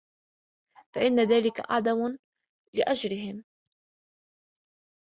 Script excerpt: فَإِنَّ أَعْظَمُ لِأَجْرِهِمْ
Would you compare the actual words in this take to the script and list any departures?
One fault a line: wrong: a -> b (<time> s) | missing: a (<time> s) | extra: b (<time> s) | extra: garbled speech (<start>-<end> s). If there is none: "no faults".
extra: ذَلِكَ (1.2 s)